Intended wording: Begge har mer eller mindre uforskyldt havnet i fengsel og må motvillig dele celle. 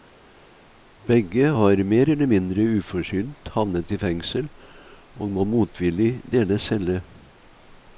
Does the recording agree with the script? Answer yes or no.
yes